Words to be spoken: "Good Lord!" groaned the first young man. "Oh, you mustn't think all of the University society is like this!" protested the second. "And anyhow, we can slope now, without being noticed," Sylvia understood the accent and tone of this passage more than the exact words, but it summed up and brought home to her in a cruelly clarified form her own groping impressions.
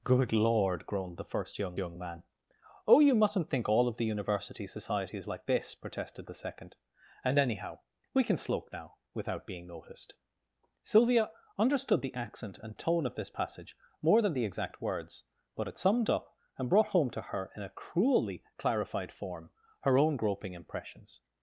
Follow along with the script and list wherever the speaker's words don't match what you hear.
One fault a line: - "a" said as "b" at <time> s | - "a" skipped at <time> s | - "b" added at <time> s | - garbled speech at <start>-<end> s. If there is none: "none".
- "young" added at 1.8 s